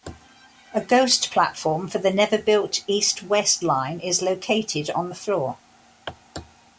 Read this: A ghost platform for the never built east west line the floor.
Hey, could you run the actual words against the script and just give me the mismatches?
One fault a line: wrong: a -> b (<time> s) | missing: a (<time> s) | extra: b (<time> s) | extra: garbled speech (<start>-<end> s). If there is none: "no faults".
extra: is located on (4.0 s)